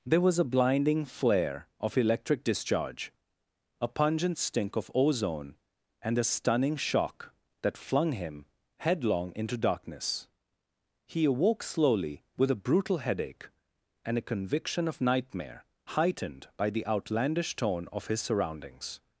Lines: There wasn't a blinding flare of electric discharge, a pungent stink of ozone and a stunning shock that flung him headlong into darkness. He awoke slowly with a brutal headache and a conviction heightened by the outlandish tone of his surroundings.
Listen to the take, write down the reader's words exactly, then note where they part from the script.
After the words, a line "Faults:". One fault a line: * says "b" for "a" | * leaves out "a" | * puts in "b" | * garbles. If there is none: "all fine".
There was a blinding flare of electric discharge, a pungent stink of ozone and a stunning shock that flung him headlong into darkness. He awoke slowly with a brutal headache and a conviction of nightmare heightened by the outlandish tone of his surroundings.
Faults:
* says "was" for "wasn't"
* puts in "of nightmare"